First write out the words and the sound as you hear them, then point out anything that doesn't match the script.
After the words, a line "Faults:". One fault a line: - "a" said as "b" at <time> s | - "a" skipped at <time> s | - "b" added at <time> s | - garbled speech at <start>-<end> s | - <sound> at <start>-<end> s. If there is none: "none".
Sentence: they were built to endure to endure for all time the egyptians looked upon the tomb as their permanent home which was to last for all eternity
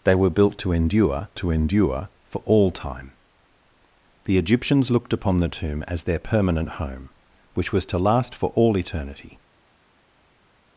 they were built to endure to endure for all time the egyptians looked upon the tomb as their permanent home which was to last for all eternity
Faults:
none